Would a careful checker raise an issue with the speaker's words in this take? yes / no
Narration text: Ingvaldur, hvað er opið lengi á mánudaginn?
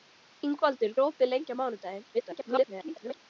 yes